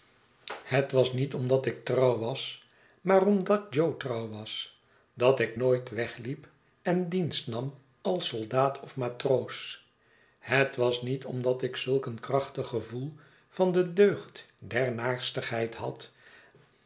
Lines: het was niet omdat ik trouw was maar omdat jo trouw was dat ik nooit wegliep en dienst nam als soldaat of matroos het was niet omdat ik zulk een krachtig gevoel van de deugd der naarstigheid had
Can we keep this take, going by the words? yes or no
yes